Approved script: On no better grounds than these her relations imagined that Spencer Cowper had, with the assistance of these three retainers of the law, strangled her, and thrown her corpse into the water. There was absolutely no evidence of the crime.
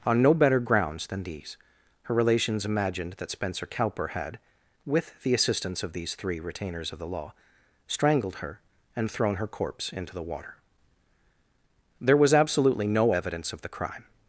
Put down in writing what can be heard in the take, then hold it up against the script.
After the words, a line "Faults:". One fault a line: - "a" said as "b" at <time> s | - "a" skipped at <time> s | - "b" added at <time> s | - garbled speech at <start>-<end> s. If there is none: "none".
On no better grounds than these her relations imagined that Spencer Cowper had, with the assistance of these three retainers of the law, strangled her, and thrown her corpse into the water. There was absolutely no evidence of the crime.
Faults:
none